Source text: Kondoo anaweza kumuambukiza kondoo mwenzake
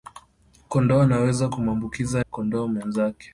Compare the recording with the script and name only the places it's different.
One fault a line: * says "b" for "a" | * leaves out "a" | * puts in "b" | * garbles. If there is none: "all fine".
all fine